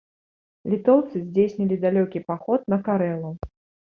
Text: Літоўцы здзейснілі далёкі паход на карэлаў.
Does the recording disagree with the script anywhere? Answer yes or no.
no